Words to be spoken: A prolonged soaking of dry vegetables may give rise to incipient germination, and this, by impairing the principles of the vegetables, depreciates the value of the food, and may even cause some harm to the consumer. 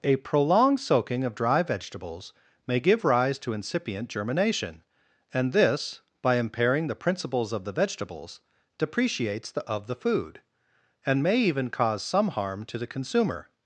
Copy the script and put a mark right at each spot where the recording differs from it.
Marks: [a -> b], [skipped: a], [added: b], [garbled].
A prolonged soaking of dry vegetables may give rise to incipient germination, and this, by impairing the principles of the vegetables, depreciates the [skipped: value] of the food, and may even cause some harm to the consumer.